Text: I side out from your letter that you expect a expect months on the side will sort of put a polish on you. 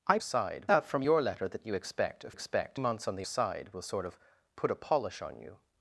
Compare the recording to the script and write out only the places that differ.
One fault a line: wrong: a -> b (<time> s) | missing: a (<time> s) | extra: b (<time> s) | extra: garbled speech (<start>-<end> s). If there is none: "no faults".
no faults